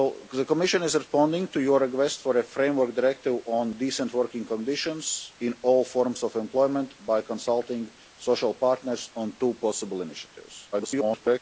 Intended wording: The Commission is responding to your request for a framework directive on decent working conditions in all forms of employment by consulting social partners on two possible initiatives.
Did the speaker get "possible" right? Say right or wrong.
right